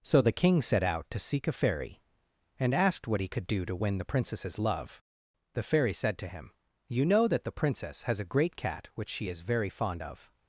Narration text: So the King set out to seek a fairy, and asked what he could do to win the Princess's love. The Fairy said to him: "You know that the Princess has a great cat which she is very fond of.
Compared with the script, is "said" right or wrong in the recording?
right